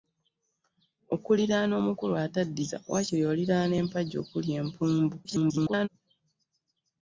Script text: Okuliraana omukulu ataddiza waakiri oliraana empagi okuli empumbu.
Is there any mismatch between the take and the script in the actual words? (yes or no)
yes